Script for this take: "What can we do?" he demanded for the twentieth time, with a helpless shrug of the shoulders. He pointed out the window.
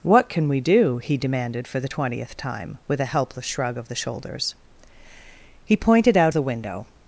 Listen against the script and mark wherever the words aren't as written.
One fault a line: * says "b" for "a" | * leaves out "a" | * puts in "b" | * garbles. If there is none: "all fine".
all fine